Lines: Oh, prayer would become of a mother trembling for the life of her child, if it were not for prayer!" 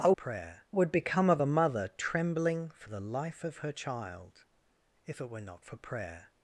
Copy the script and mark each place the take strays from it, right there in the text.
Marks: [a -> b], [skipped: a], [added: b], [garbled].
Oh, prayer would become of a mother trembling for the life of her child, if it were not for prayer!"